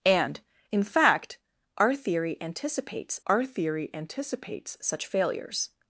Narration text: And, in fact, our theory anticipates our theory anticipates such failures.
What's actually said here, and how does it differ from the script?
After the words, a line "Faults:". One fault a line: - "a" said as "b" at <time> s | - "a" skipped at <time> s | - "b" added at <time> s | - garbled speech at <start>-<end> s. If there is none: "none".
And, in fact, our theory anticipates our theory anticipates such failures.
Faults:
none